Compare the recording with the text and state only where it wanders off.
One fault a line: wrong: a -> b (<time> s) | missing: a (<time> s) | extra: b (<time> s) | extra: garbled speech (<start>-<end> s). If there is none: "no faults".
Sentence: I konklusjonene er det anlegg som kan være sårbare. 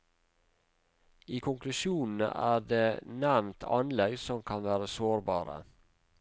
extra: nevnt (3.2 s)